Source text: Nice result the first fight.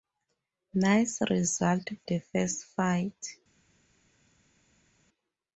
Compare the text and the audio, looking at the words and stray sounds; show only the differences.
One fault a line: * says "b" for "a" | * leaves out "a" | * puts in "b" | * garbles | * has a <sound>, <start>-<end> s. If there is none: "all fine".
all fine